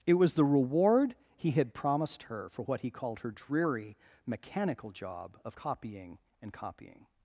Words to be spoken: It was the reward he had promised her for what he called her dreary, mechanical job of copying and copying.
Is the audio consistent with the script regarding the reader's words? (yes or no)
yes